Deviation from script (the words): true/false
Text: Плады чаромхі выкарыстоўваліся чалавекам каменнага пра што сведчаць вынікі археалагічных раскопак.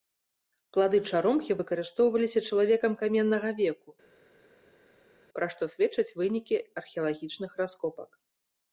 true